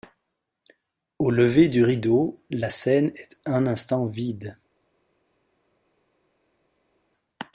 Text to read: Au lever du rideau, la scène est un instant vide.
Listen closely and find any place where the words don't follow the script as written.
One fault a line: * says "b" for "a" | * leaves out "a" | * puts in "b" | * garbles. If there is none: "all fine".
all fine